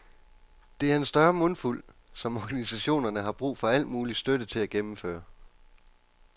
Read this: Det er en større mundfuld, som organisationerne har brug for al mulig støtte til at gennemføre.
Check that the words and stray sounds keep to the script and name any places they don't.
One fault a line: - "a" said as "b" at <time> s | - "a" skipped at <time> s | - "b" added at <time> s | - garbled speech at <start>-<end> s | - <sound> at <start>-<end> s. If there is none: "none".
none